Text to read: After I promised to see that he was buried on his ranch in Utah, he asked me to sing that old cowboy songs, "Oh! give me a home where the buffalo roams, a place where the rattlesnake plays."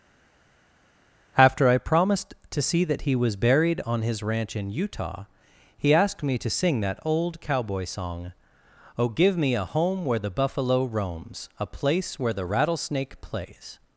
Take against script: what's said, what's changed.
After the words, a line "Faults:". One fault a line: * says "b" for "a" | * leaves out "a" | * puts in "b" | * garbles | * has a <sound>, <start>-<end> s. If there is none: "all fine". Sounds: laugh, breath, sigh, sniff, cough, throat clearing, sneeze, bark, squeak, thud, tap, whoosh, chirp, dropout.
After I promised to see that he was buried on his ranch in Utah, he asked me to sing that old cowboy song, "Oh! give me a home where the buffalo roams, a place where the rattlesnake plays."
Faults:
* says "song" for "songs"